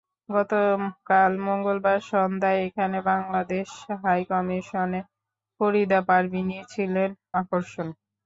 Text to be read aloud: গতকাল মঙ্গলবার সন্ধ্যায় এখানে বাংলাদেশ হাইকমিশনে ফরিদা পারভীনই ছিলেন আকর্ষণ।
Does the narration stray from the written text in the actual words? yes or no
no